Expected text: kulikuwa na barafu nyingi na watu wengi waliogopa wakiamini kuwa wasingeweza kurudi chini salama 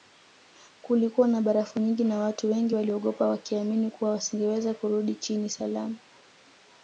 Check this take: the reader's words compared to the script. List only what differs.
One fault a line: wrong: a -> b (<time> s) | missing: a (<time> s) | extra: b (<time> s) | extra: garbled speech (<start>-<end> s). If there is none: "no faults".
no faults